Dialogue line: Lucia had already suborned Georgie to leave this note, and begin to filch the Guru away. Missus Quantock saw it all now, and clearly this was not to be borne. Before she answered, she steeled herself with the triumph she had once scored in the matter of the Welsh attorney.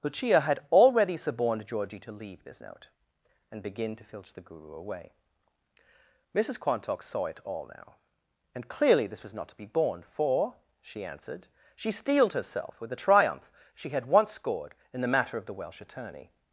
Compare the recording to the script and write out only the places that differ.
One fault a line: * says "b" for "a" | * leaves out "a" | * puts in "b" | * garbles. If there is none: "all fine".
* says "For" for "Before"